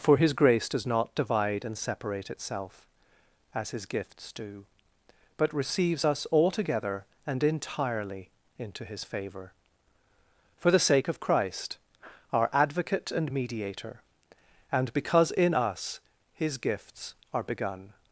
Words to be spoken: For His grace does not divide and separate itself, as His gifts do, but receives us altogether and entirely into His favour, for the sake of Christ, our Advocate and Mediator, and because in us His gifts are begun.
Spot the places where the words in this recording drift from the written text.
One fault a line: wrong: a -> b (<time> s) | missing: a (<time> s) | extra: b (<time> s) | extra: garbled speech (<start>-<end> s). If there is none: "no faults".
no faults